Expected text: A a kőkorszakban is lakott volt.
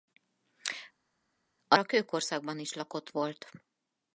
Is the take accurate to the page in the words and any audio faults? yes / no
yes